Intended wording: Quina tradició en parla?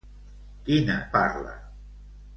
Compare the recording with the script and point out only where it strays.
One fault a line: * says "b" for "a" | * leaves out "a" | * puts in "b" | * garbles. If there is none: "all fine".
* leaves out "tradició en"